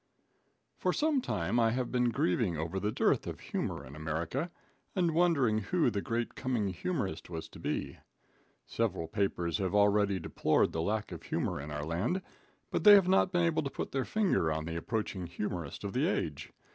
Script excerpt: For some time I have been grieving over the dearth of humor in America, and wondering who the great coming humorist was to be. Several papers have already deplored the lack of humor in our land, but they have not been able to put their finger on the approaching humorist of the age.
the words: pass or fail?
pass